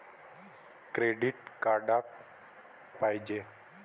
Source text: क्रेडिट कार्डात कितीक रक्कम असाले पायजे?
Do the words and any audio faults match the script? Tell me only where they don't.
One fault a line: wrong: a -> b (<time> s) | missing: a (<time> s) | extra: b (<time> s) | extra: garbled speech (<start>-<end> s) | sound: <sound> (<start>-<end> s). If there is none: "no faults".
missing: कितीक रक्कम असाले (2.0 s)